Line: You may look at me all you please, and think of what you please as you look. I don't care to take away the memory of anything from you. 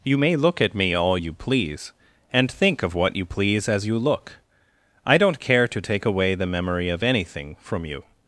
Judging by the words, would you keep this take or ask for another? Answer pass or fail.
pass